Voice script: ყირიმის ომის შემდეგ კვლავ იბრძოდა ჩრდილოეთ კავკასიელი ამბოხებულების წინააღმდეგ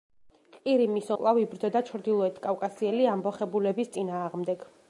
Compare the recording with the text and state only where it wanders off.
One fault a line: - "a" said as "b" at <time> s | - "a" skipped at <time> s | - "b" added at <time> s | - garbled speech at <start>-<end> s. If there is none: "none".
- "ომის შემდეგ" skipped at 1.1 s